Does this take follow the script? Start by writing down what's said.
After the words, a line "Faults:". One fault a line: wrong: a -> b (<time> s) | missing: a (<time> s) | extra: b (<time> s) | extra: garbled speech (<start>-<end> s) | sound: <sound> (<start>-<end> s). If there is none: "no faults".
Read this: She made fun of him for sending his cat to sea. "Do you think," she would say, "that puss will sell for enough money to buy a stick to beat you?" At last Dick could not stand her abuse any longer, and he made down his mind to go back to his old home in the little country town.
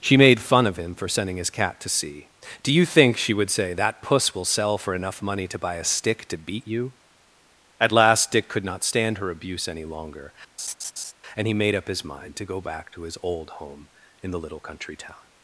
She made fun of him for sending his cat to sea. "Do you think," she would say, "that puss will sell for enough money to buy a stick to beat you?" At last Dick could not stand her abuse any longer, and he made up his mind to go back to his old home in the little country town.
Faults:
sound: laugh (10.6-11.1 s)
wrong: down -> up (11.8 s)